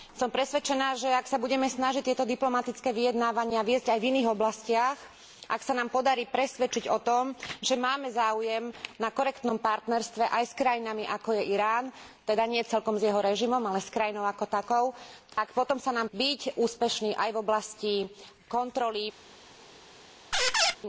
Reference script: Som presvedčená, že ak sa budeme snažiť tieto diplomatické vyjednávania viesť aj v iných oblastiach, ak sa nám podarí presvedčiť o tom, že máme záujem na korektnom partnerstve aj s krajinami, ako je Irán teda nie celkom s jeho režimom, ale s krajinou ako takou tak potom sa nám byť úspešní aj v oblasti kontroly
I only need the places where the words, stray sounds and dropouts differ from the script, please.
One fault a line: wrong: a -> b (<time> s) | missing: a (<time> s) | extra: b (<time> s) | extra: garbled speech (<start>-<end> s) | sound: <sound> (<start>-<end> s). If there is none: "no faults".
sound: dropout (15.3-15.4 s)
sound: squeak (20.3-20.8 s)